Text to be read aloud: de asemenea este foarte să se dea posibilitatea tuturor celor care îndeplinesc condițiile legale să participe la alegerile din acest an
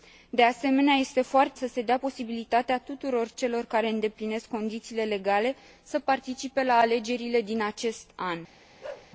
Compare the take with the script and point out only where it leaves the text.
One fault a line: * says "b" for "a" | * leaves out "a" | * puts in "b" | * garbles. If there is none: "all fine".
all fine